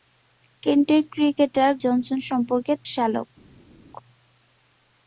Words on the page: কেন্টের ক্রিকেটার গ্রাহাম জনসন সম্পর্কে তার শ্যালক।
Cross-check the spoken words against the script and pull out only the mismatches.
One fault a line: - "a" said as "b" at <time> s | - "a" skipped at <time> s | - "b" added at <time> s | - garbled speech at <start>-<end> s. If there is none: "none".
- "গ্রাহাম" skipped at 1.7 s
- "তার" skipped at 2.7 s